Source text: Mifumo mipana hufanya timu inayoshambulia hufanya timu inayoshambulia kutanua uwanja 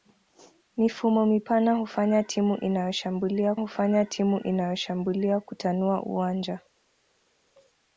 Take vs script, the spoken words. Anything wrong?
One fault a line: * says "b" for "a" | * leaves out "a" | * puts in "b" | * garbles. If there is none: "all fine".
all fine